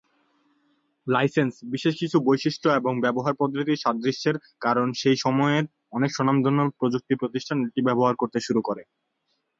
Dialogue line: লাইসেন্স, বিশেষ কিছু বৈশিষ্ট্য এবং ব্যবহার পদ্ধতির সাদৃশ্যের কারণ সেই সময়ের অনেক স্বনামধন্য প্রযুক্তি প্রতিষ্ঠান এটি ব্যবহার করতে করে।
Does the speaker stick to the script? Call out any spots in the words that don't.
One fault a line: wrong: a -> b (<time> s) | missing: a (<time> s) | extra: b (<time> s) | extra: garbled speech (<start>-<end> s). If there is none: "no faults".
extra: শুরু (8.5 s)